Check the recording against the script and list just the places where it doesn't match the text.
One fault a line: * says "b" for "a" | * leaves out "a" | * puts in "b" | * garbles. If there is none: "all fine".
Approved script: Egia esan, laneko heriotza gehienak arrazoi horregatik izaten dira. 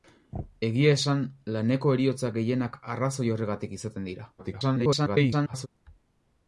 * garbles